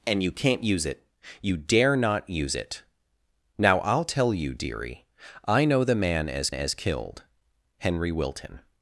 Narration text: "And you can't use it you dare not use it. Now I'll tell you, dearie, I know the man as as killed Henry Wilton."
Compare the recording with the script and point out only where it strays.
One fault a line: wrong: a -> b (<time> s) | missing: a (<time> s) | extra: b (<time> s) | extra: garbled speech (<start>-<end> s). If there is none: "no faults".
no faults